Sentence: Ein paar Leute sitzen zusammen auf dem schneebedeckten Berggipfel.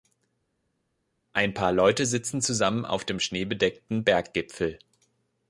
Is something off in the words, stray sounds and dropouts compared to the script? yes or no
no